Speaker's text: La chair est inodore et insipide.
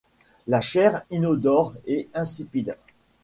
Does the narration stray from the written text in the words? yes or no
yes